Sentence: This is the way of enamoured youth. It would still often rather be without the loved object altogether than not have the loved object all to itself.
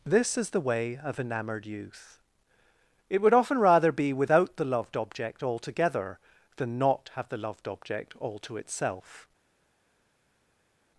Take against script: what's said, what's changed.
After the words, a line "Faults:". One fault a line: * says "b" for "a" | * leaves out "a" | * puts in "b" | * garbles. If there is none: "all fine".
This is the way of enamoured youth. It would often rather be without the loved object altogether than not have the loved object all to itself.
Faults:
* leaves out "still"